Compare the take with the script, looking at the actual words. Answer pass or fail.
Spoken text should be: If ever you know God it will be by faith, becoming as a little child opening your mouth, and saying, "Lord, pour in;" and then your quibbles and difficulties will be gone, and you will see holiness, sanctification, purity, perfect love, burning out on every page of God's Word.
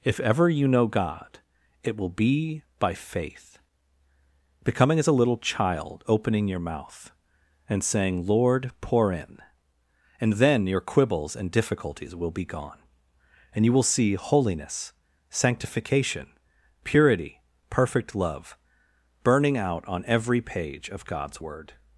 pass